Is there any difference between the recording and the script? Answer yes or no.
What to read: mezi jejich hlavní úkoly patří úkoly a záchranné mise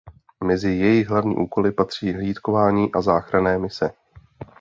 yes